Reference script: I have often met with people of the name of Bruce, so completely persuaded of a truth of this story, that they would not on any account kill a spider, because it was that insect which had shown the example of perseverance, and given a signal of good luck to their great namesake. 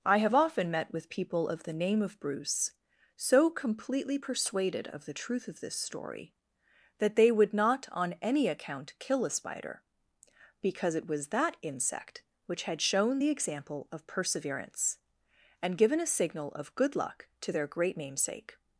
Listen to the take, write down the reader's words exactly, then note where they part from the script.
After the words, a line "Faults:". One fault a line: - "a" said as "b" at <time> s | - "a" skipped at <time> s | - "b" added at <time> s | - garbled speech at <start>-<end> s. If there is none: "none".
I have often met with people of the name of Bruce, so completely persuaded of the truth of this story, that they would not on any account kill a spider, because it was that insect which had shown the example of perseverance, and given a signal of good luck to their great namesake.
Faults:
- "a" said as "the" at 5.0 s